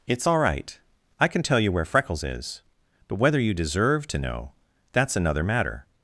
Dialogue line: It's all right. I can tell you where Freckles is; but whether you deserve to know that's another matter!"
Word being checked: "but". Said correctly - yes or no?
yes